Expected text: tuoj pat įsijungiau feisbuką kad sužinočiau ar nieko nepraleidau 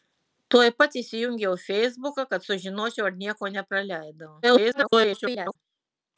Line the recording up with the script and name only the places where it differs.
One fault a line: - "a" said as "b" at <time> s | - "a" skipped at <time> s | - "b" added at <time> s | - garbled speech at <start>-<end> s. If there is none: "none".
- garbled speech at 4.4-5.6 s